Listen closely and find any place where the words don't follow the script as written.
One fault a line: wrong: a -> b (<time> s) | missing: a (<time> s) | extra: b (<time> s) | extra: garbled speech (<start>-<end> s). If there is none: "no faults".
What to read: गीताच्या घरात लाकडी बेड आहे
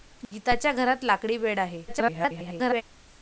extra: garbled speech (1.9-2.8 s)